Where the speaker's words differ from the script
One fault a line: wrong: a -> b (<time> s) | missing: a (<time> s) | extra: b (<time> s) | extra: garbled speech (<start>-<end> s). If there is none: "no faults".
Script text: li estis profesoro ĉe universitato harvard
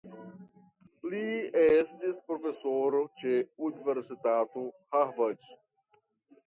no faults